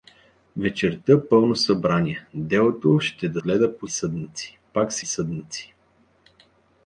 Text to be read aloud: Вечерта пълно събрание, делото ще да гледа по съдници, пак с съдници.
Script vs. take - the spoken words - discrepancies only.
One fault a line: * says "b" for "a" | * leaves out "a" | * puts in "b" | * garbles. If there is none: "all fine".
all fine